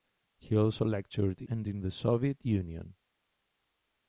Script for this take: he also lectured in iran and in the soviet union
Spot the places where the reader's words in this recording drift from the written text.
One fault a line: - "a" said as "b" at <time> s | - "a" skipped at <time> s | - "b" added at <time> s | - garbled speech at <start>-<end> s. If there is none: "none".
- "in iran" skipped at 1.4 s